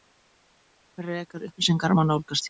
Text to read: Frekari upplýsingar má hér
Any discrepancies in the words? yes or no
yes